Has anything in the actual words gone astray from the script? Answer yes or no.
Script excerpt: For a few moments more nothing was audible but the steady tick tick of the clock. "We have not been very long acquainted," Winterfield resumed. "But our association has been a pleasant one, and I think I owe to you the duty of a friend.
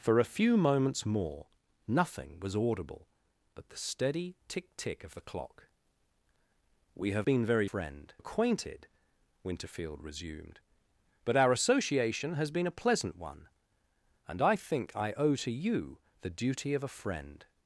yes